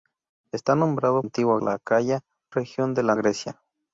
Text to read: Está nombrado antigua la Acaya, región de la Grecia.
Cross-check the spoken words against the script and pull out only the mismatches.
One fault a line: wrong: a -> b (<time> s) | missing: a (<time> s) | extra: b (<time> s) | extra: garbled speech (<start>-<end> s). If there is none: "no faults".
no faults